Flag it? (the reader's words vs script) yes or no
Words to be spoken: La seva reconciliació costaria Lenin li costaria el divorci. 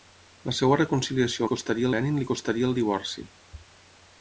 no